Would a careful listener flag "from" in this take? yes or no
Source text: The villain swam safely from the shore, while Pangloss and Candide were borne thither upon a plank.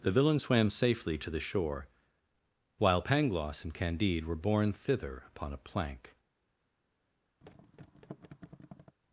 yes